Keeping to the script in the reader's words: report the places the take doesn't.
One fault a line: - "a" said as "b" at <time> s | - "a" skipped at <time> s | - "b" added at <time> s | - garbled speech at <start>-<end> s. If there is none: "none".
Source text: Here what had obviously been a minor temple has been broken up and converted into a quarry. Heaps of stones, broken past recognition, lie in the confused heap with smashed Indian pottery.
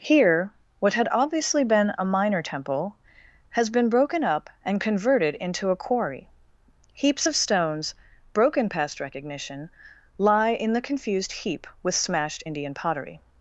none